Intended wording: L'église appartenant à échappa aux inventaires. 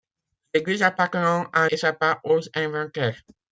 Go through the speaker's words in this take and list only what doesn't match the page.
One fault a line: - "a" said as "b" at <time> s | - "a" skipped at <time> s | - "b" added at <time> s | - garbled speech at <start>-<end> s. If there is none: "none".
none